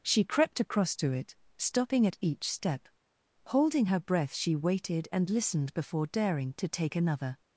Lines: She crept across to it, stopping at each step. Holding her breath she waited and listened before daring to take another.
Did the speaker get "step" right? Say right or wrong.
right